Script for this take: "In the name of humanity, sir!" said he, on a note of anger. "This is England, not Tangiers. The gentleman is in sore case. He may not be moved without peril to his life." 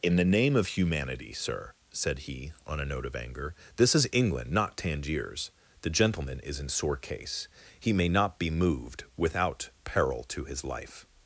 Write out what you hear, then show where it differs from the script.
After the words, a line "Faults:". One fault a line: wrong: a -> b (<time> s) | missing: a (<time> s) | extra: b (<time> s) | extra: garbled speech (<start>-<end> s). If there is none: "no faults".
"In the name of humanity, sir!" said he, on a note of anger. "This is England, not Tangiers. The gentleman is in sore case. He may not be moved without peril to his life."
Faults:
no faults